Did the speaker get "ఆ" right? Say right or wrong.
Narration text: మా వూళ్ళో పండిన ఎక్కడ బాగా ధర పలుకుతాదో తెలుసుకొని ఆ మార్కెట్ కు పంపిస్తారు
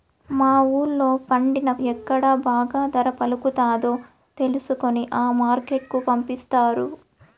right